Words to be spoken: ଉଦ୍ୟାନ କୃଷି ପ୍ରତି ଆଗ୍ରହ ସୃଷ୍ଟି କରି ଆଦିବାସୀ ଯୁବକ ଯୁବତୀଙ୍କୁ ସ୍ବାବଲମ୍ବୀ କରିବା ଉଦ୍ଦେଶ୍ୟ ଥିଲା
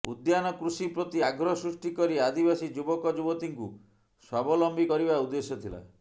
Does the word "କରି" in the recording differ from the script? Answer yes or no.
no